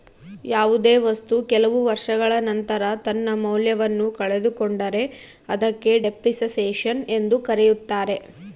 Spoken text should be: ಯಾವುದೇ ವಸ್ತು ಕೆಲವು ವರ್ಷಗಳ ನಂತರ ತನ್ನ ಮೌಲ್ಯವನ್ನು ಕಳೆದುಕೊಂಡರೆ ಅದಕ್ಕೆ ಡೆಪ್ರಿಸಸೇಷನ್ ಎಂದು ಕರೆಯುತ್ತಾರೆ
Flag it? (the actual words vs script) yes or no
no